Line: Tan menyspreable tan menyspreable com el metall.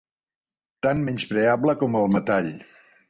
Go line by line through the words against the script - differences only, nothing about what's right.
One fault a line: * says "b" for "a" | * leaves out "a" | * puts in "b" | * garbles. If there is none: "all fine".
* leaves out "tan menyspreable"